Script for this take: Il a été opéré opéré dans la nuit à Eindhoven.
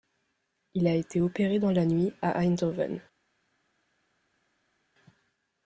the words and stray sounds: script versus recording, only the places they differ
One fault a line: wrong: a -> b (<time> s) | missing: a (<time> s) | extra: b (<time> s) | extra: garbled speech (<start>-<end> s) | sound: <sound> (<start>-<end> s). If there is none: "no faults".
missing: opéré (1.6 s)